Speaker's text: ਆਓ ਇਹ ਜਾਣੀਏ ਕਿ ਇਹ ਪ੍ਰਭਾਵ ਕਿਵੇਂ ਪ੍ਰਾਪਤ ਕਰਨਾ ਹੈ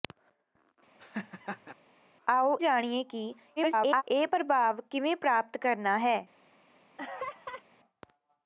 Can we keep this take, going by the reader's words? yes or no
no